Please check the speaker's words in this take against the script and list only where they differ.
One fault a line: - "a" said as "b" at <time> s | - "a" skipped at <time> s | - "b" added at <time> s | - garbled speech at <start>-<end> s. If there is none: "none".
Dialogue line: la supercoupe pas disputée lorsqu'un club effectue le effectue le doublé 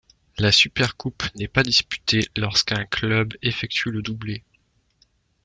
- "n'est" added at 1.4 s
- "effectue le" skipped at 4.0 s